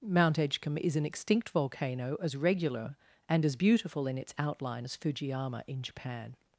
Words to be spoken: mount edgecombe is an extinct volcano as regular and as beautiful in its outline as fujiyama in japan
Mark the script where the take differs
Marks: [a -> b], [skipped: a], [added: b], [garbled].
mount edgecombe is an extinct volcano as regular and as beautiful in its outline as fujiyama in japan